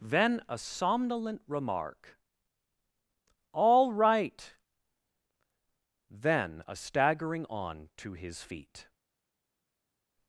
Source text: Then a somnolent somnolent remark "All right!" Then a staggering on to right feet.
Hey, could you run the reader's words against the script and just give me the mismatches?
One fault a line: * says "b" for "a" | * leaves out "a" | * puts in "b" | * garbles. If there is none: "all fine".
* leaves out "somnolent"
* says "his" for "right"